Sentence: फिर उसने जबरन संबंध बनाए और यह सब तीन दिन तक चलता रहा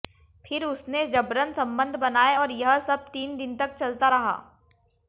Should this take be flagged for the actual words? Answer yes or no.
no